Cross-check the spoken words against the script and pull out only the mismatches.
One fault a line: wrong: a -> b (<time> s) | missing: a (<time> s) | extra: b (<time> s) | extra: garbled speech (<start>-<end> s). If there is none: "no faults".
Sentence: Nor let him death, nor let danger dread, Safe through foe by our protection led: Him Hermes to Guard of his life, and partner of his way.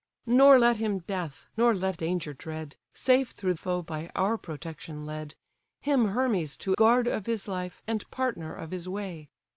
no faults